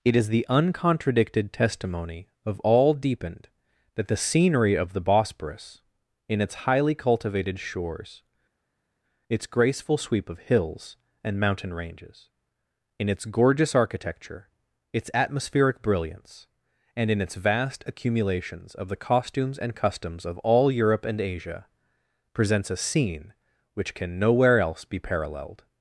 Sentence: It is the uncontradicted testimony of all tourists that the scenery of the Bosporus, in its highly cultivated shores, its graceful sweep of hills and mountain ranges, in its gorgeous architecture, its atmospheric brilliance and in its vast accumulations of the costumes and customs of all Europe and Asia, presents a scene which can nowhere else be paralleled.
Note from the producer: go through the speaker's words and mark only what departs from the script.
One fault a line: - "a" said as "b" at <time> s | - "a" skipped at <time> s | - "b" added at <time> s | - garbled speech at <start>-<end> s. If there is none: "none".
- "tourists" said as "deepened" at 3.0 s